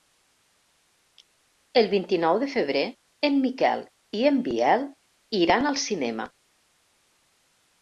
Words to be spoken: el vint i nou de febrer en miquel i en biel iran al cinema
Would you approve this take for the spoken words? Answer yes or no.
yes